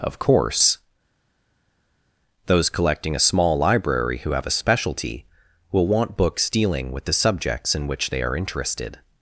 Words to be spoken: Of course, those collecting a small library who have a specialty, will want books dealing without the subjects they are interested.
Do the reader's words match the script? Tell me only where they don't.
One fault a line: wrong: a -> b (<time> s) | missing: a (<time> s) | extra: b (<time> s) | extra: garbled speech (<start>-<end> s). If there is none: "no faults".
wrong: without -> with (6.9 s)
extra: in which (7.7 s)